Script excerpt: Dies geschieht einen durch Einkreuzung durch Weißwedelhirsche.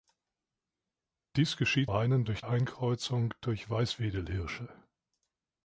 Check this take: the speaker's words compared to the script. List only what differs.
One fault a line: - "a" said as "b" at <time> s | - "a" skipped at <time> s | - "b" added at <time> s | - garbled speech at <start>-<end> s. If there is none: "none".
none